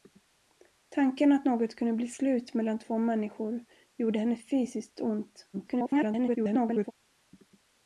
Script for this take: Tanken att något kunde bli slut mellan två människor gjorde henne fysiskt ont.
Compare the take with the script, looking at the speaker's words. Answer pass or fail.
fail